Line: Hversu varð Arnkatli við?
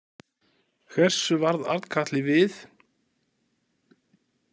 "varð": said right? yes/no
yes